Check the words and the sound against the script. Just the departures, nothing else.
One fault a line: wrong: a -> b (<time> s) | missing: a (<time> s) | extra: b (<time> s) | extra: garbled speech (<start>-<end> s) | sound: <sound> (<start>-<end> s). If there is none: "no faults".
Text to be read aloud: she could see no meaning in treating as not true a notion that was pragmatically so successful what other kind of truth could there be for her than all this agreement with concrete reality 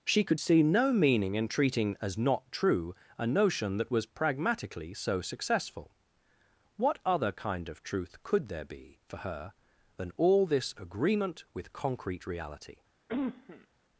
sound: cough (13.1-13.7 s)